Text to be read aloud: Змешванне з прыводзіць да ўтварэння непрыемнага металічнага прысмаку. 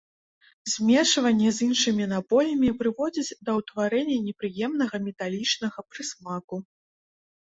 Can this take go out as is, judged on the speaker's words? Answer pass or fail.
fail